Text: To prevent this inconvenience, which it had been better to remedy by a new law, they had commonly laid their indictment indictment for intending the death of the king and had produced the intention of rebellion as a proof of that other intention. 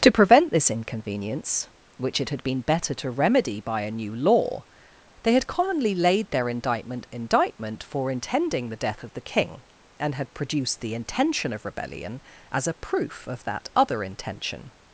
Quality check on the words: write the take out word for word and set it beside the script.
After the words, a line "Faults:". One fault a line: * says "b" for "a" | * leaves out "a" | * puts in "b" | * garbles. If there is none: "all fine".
To prevent this inconvenience, which it had been better to remedy by a new law, they had commonly laid their indictment indictment for intending the death of the king and had produced the intention of rebellion as a proof of that other intention.
Faults:
all fine